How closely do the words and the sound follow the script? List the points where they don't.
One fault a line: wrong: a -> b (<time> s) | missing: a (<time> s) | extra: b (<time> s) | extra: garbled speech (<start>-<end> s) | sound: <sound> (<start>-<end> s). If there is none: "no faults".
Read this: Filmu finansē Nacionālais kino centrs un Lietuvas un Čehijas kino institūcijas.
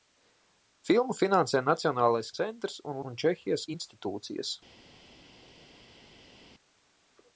missing: kino (2.3 s)
missing: Lietuvas (3.0 s)
missing: kino (3.7 s)